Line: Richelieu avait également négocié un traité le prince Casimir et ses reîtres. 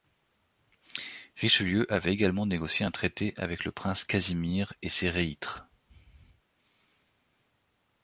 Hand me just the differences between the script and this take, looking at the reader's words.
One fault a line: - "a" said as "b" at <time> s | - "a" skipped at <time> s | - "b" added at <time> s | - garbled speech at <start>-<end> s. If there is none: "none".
- "avec" added at 3.4 s